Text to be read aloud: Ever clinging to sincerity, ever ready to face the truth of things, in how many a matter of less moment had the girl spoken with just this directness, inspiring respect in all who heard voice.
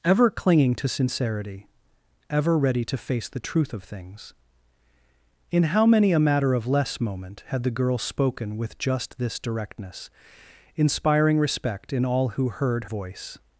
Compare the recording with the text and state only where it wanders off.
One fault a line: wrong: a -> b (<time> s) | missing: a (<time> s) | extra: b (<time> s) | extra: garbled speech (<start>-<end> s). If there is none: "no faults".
no faults